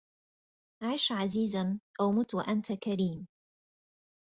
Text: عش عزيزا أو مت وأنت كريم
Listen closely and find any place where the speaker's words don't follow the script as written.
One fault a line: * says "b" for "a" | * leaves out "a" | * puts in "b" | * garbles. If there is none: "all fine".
all fine